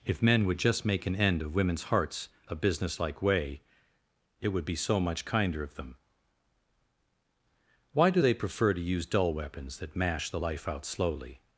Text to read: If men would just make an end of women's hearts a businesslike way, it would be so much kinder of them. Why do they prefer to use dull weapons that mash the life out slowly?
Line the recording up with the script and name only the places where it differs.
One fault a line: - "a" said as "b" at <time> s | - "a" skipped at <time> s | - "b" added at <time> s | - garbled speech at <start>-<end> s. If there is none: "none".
none